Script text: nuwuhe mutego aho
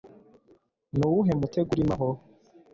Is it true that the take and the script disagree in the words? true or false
true